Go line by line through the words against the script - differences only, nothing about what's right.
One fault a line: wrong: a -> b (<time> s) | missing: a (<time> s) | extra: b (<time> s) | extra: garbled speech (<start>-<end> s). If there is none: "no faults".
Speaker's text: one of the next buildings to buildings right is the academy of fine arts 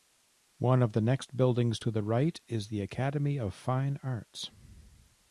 wrong: buildings -> the (1.9 s)